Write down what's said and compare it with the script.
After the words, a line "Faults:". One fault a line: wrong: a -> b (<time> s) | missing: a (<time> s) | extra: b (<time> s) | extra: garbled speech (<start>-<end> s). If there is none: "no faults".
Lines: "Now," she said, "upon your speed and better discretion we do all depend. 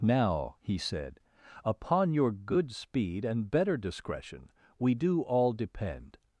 "Now," he said, "upon your good speed and better discretion we do all depend.
Faults:
wrong: she -> he (0.6 s)
extra: good (2.3 s)